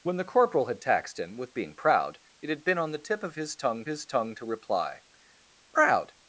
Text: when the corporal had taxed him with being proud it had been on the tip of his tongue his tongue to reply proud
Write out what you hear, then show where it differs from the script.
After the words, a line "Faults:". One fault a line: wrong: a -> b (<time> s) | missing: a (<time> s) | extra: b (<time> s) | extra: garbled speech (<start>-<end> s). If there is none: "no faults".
when the corporal had taxed him with being proud it had been on the tip of his tongue his tongue to reply proud
Faults:
no faults